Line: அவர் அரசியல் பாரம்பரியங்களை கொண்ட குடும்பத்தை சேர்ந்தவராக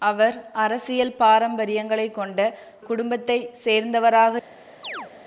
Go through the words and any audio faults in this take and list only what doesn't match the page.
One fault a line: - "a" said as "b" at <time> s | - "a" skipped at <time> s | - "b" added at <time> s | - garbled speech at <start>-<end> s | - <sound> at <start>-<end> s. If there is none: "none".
- chirp at 4.8-5.1 s